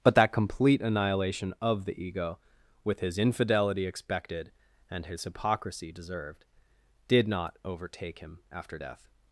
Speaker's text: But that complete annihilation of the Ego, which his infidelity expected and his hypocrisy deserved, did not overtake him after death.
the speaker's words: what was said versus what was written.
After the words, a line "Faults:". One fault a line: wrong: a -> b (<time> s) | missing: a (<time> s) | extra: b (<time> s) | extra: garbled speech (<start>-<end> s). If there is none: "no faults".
But that complete annihilation of the Ego, with his infidelity expected and his hypocrisy deserved, did not overtake him after death.
Faults:
wrong: which -> with (2.8 s)